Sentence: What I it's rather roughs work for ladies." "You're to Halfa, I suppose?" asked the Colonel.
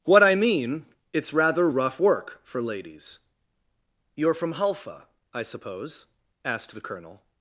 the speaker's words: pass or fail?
fail